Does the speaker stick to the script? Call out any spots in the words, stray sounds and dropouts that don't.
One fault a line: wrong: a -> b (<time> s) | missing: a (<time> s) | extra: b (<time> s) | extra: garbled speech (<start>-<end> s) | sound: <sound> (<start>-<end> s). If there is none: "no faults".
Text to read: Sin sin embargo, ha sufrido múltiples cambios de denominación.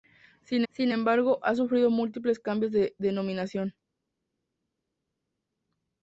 no faults